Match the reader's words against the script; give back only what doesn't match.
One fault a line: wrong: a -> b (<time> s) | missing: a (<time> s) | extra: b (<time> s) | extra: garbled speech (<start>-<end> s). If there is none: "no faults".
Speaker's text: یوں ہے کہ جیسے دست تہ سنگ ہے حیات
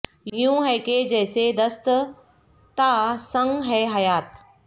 no faults